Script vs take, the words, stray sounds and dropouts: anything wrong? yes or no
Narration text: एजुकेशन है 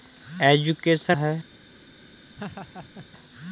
yes